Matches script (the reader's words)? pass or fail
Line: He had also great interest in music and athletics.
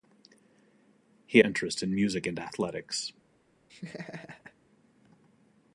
fail